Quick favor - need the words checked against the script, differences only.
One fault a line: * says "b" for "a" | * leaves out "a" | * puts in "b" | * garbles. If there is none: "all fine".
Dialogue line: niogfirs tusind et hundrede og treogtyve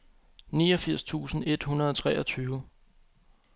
all fine